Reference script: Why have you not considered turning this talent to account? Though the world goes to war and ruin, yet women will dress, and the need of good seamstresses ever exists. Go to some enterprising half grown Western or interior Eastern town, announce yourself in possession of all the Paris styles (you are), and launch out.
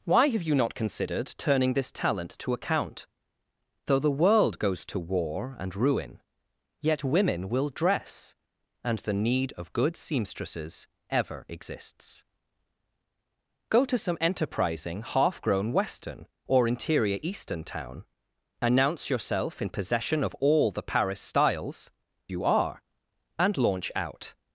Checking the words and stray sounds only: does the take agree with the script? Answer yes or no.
yes